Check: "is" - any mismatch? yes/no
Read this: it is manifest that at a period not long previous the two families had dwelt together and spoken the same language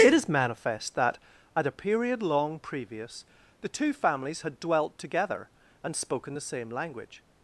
no